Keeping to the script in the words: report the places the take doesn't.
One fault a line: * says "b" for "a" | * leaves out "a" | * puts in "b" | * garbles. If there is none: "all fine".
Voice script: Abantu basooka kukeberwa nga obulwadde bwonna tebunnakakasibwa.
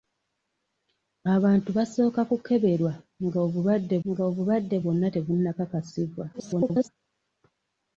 * puts in "nga obulwadde"
* garbles